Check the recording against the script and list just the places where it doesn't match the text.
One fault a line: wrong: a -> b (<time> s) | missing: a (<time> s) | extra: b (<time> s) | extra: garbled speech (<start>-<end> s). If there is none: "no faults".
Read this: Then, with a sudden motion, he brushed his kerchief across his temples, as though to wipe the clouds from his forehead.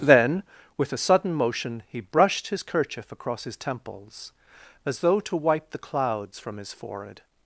no faults